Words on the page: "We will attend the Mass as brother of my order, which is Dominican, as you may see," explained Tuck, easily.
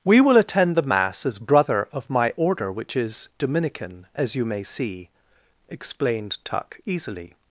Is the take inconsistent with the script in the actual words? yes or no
no